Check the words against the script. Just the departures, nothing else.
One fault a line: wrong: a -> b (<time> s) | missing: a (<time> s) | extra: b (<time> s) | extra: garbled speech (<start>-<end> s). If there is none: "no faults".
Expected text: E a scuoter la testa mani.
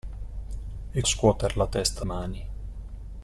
no faults